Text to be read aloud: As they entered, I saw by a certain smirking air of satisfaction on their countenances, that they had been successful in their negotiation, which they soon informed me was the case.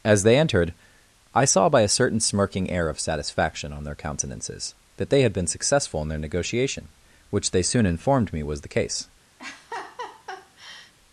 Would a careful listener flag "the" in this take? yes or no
no